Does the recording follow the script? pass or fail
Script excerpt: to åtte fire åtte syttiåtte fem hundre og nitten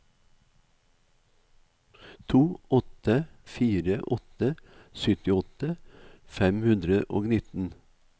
pass